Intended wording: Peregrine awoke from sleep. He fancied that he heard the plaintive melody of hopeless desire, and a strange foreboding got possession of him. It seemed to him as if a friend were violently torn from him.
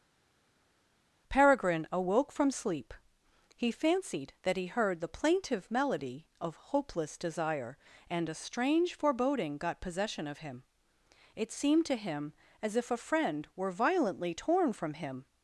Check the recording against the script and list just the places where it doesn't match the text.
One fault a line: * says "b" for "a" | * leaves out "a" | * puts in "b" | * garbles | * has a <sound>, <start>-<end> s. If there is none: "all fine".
all fine